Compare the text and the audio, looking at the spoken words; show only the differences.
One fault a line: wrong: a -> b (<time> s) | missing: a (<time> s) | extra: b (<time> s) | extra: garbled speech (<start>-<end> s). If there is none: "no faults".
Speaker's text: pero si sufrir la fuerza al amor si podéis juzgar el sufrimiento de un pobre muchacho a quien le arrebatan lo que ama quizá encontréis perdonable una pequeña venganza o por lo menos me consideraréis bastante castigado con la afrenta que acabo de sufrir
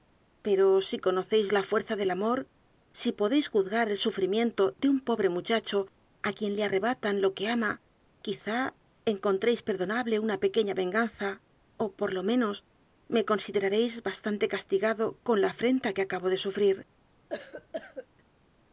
wrong: sufrir -> conocéis (1.1 s)
wrong: al -> del (2.0 s)